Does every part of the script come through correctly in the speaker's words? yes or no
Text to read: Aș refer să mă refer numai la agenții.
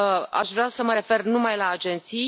no